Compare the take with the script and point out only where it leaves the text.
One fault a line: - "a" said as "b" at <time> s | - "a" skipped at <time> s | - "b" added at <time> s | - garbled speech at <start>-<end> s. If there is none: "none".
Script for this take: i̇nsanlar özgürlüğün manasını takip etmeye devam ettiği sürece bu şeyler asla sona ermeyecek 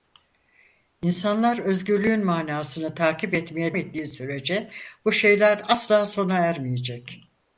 - "devam" skipped at 3.8 s